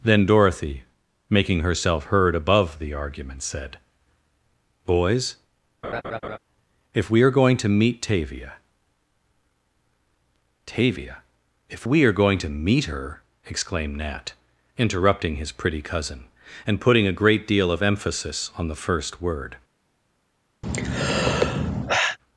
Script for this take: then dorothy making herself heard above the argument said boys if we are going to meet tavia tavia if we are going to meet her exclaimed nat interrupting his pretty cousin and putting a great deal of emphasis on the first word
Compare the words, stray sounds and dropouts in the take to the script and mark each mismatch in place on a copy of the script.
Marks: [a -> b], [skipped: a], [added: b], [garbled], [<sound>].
then dorothy making herself heard above the argument said boys [laugh] if we are going to meet tavia tavia if we are going to meet her exclaimed nat interrupting his pretty cousin and putting a great deal of emphasis on the first word [sigh]